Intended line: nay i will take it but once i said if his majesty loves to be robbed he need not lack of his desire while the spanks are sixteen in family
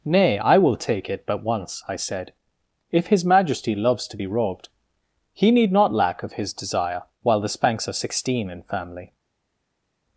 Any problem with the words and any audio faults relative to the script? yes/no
no